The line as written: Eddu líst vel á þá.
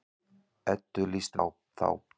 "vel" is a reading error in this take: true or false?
true